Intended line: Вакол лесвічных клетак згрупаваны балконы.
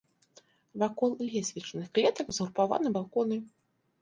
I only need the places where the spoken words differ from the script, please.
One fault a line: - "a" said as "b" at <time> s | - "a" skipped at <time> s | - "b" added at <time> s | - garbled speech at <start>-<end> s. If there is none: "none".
none